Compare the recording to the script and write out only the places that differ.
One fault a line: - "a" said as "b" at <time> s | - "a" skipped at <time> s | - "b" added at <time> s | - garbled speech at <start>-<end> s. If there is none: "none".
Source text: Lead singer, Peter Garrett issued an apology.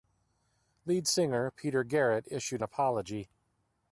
- "an" skipped at 2.6 s